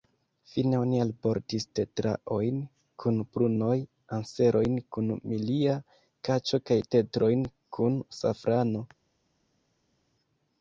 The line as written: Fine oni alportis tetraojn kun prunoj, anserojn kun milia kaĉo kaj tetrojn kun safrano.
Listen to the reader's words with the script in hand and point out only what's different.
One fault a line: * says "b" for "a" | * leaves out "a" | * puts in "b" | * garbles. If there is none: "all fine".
all fine